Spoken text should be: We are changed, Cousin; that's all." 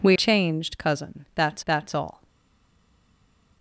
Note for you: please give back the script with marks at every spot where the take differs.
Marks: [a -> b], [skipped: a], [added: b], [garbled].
We [skipped: are] changed, Cousin; that's [added: that's] all."